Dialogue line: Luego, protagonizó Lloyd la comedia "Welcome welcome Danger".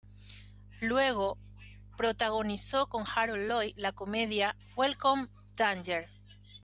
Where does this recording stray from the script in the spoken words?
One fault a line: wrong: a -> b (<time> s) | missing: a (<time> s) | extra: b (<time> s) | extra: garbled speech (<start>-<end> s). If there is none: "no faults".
extra: con Harold (2.9 s)
missing: welcome (5.3 s)